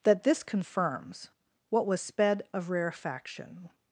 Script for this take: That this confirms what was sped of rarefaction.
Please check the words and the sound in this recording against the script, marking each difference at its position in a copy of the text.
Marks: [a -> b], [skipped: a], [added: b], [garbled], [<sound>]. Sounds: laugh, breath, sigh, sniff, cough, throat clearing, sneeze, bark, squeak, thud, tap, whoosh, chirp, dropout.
That this confirms what was sped of rarefaction.